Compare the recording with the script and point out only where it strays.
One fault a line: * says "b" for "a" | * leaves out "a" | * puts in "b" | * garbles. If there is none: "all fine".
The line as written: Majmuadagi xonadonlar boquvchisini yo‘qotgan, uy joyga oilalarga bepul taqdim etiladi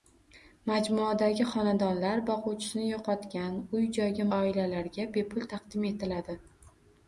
all fine